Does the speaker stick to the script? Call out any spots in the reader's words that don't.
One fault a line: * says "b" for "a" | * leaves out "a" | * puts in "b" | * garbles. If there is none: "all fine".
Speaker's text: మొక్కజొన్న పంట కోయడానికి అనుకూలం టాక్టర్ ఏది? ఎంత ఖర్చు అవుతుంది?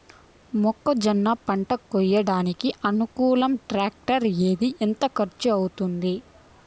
all fine